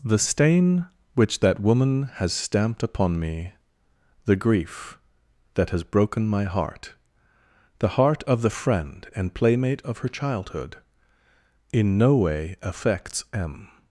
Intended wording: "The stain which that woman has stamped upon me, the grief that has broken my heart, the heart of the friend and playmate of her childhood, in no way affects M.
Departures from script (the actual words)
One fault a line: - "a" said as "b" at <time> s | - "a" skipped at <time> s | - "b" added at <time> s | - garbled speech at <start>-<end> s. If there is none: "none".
none